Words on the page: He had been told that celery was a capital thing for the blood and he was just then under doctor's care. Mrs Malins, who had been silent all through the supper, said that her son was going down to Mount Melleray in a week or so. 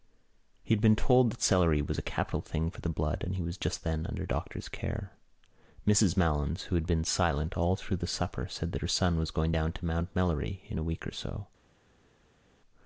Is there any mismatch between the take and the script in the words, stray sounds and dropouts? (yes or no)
no